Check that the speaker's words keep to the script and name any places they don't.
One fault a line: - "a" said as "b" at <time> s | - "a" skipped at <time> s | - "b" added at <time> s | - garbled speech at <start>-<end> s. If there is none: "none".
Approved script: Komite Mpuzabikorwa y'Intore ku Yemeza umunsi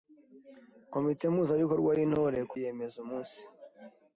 none